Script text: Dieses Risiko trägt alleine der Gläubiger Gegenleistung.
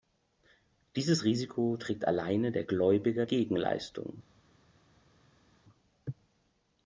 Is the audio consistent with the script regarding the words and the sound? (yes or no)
yes